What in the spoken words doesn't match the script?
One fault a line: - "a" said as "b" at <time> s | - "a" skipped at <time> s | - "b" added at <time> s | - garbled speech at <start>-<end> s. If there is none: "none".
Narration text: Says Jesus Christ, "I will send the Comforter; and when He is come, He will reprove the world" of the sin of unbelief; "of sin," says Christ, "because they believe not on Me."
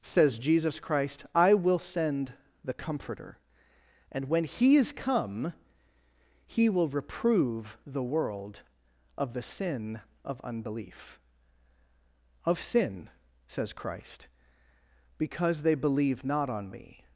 none